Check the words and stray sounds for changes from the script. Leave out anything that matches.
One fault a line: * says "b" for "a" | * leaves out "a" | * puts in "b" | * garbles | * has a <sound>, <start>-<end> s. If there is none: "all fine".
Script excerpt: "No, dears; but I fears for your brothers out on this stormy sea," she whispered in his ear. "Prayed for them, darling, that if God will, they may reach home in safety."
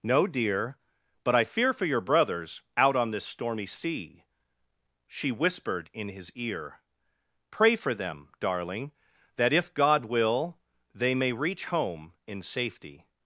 * says "dear" for "dears"
* says "fear" for "fears"
* says "Pray" for "Prayed"